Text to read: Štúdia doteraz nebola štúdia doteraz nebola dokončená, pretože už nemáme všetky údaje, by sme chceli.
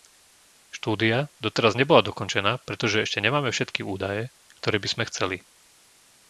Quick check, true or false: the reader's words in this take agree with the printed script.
false